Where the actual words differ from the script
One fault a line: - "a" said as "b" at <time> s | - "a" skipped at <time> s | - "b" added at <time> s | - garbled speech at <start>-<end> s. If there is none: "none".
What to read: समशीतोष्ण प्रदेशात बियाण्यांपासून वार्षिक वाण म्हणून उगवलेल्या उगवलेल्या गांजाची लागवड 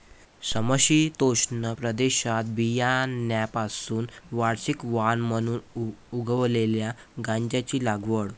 - "उगवलेल्या" skipped at 6.9 s